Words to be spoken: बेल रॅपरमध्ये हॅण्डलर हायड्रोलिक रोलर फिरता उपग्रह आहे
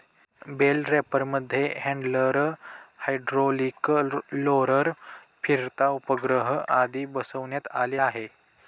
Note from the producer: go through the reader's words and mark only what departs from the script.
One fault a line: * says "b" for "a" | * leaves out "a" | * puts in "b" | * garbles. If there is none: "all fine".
* puts in "आदी बसवण्यात आले"